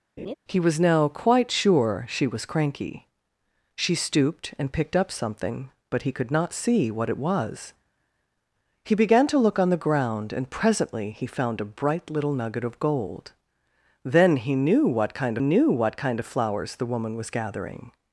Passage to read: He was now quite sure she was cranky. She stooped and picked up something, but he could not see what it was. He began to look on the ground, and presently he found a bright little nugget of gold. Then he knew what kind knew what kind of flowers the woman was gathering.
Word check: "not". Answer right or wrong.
right